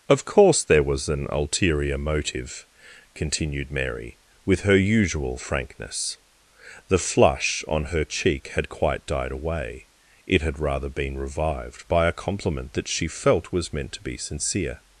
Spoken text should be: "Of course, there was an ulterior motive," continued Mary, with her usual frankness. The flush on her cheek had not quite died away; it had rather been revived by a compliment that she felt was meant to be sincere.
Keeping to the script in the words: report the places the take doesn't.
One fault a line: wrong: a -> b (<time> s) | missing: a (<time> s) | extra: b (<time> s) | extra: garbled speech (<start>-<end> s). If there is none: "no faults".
missing: not (8.7 s)